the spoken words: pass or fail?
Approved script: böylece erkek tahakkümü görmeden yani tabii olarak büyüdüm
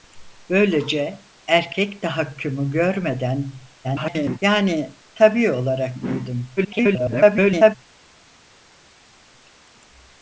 fail